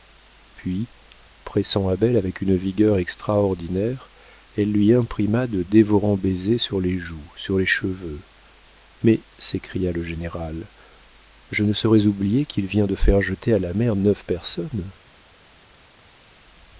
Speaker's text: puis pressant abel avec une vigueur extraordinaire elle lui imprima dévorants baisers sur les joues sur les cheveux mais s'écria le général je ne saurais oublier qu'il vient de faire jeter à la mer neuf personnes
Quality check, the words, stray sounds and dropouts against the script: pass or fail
fail